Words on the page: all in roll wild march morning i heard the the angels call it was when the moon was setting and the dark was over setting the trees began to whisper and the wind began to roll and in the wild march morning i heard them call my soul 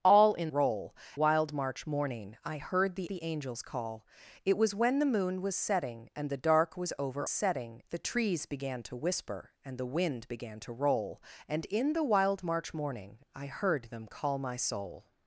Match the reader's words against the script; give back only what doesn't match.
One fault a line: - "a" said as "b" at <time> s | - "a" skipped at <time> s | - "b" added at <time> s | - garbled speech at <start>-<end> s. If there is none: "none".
none